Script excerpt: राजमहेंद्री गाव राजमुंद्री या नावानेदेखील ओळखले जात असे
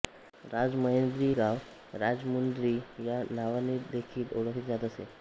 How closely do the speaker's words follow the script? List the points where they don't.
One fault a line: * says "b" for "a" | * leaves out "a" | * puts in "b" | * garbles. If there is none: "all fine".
all fine